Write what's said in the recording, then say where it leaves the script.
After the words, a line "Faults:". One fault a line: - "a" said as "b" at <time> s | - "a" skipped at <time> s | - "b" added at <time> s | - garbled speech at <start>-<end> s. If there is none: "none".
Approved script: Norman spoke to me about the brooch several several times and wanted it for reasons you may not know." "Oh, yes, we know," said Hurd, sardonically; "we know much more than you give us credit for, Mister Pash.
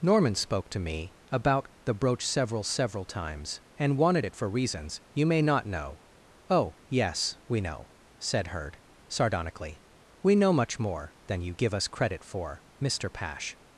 Norman spoke to me about the brooch several several times and wanted it for reasons you may not know." "Oh, yes, we know," said Hurd, sardonically; "we know much more than you give us credit for, Mister Pash.
Faults:
none